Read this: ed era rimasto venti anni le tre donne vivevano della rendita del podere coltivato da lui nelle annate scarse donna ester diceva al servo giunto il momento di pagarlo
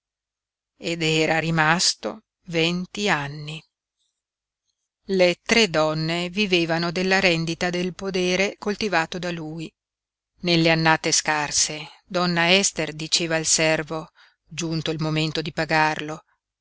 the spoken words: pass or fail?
pass